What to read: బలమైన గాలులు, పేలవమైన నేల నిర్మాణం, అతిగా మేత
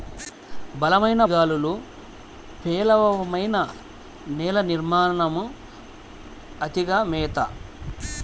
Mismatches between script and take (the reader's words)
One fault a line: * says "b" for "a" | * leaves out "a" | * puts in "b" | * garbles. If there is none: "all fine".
all fine